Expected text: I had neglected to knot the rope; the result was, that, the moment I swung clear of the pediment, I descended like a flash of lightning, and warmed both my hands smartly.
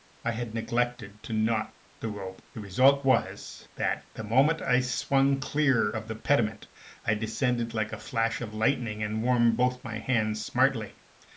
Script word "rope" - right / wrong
right